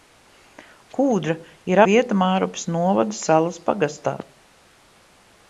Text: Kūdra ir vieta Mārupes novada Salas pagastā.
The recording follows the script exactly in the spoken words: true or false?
true